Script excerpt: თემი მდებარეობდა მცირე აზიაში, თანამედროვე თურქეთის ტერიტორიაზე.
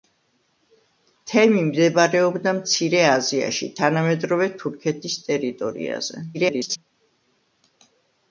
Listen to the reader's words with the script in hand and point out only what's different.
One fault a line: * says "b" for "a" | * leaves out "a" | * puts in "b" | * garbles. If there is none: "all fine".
* garbles